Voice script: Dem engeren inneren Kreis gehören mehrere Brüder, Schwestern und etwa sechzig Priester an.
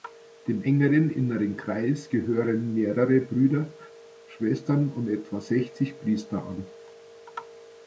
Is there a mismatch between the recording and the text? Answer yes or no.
no